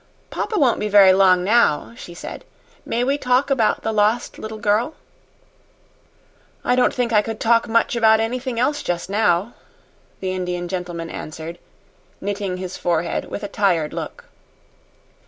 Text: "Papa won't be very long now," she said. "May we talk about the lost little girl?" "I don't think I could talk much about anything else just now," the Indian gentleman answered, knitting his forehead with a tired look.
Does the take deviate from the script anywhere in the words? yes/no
no